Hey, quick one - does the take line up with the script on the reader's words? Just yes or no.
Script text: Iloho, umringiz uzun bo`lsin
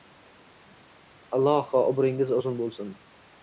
yes